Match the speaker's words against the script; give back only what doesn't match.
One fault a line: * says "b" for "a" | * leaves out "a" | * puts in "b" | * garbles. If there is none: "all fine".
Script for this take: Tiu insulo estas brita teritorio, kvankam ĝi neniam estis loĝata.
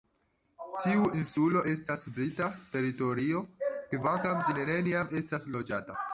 all fine